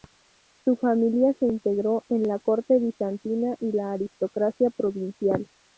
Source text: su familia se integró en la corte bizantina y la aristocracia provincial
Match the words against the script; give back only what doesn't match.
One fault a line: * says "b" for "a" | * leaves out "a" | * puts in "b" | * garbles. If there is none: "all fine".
all fine